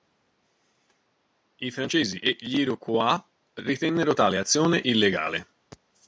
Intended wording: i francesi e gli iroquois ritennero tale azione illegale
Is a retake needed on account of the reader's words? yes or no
no